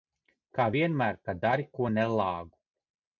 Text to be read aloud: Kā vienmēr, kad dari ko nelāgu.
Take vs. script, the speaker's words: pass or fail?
pass